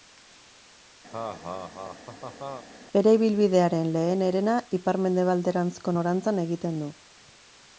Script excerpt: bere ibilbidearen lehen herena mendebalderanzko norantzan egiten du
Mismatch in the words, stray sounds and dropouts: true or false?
true